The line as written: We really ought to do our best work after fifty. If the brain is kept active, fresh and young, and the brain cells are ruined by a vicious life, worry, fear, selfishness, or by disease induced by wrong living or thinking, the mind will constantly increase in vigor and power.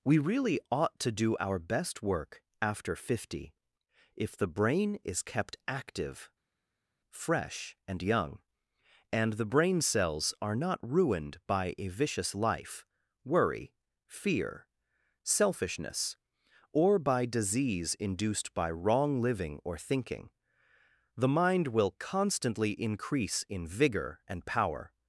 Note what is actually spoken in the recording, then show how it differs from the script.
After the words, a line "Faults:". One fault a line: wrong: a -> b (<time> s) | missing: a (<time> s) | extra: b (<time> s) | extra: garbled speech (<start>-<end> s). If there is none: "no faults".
We really ought to do our best work after fifty. If the brain is kept active, fresh and young, and the brain cells are not ruined by a vicious life, worry, fear, selfishness, or by disease induced by wrong living or thinking, the mind will constantly increase in vigor and power.
Faults:
extra: not (10.5 s)